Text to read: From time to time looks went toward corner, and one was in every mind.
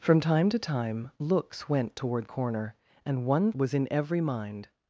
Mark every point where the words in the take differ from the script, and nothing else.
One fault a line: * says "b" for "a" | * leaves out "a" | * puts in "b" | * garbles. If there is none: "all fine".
all fine